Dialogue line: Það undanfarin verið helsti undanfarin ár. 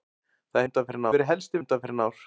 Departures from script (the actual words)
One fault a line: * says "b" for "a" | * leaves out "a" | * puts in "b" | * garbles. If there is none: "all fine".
all fine